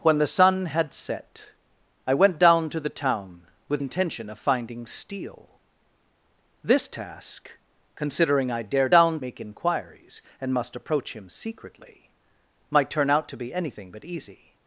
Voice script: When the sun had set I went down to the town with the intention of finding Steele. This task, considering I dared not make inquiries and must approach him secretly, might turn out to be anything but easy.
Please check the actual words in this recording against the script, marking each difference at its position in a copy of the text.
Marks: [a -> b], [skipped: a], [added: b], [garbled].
When the sun had set I went down to the town with [skipped: the] intention of finding Steele. This task, considering I dared [not -> down] make inquiries and must approach him secretly, might turn out to be anything but easy.